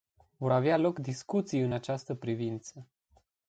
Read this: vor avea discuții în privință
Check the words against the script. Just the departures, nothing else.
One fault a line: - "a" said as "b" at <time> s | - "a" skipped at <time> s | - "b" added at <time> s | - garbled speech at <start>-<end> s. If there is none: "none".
- "loc" added at 0.8 s
- "această" added at 1.7 s